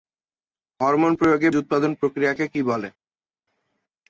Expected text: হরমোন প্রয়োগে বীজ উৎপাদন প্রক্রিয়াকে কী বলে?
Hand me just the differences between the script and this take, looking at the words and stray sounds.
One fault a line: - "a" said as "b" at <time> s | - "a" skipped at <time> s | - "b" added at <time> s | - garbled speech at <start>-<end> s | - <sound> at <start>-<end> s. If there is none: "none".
- "বীজ" skipped at 1.5 s